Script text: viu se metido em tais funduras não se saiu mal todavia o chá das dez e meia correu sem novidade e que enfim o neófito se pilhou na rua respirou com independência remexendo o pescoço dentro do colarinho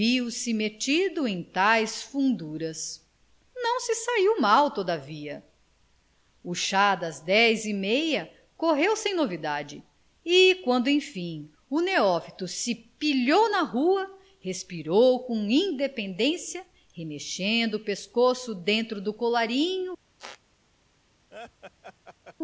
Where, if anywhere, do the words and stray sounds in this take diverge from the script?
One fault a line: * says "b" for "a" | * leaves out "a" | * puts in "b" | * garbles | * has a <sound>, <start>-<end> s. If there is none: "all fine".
* says "quando" for "que"
* has a squeak, 20.2-20.4 s
* has a laugh, 21.3-22.4 s